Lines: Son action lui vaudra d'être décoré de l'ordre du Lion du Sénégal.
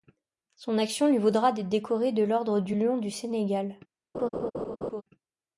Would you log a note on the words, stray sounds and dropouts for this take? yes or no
yes